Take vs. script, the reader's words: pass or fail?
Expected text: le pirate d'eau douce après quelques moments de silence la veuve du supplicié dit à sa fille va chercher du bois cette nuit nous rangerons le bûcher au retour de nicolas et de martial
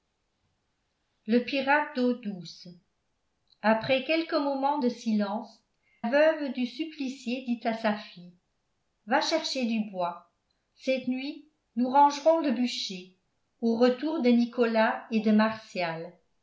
fail